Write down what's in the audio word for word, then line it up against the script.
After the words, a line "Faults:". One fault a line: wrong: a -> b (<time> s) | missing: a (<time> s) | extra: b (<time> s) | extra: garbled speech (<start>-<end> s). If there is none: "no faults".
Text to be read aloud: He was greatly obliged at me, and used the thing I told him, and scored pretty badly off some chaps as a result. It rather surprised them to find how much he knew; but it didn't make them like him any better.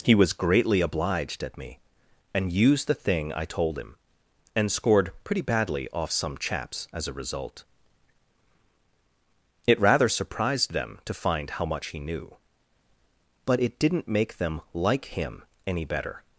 He was greatly obliged at me, and used the thing I told him, and scored pretty badly off some chaps as a result. It rather surprised them to find how much he knew; but it didn't make them like him any better.
Faults:
no faults